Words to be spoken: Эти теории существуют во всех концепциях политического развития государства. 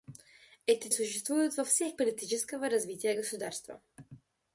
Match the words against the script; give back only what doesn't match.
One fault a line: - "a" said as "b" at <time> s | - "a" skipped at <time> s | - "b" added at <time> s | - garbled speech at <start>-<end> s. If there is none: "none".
- "теории" skipped at 0.9 s
- "концепциях" skipped at 1.9 s